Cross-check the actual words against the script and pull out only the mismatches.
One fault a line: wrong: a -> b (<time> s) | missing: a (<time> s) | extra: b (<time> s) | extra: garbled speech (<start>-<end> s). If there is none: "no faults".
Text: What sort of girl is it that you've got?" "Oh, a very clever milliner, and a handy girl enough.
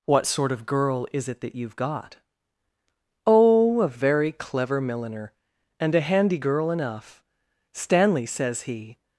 extra: Stanley says he (7.7 s)